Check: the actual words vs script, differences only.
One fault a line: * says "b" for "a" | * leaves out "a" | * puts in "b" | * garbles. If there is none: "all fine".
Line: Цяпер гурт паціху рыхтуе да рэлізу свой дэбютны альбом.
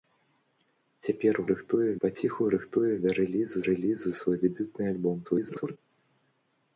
* says "рыхтуе" for "гурт"
* puts in "рэлізу"
* garbles